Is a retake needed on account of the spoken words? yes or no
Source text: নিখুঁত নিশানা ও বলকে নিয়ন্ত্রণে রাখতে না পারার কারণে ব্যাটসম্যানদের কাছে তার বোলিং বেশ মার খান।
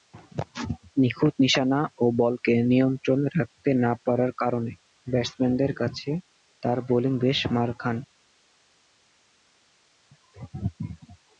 no